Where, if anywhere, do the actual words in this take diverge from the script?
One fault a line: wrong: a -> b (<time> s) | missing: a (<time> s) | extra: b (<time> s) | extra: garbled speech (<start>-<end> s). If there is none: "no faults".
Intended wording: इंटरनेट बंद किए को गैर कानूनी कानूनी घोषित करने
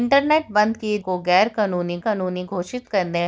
no faults